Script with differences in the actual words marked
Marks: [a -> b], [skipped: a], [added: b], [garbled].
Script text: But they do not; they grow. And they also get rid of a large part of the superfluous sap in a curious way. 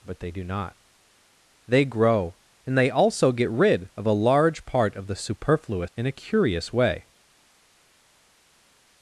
But they do not; they grow. And they also get rid of a large part of the superfluous [skipped: sap] in a curious way.